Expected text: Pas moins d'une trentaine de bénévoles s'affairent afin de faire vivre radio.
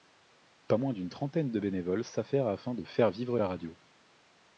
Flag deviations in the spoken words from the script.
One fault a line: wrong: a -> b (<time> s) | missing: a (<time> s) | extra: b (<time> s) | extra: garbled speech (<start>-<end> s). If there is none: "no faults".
extra: la (3.4 s)